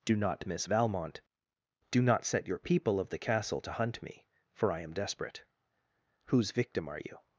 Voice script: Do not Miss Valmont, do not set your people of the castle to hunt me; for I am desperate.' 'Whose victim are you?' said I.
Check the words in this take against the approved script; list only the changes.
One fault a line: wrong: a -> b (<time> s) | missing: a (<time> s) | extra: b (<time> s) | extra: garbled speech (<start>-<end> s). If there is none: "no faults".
missing: said I (7.2 s)